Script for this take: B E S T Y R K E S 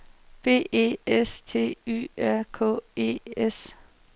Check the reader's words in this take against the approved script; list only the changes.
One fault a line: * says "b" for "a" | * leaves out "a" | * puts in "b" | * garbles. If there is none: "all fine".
all fine